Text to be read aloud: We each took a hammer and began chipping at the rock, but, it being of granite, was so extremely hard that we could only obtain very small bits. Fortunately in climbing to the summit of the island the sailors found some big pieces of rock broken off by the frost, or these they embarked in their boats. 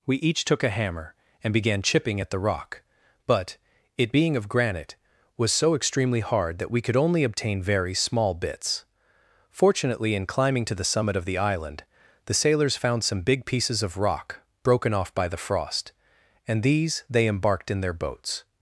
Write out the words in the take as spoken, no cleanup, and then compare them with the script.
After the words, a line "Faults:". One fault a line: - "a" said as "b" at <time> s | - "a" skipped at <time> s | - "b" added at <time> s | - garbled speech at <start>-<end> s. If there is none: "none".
We each took a hammer and began chipping at the rock, but, it being of granite, was so extremely hard that we could only obtain very small bits. Fortunately in climbing to the summit of the island the sailors found some big pieces of rock broken off by the frost, and these they embarked in their boats.
Faults:
- "or" said as "and" at 16.5 s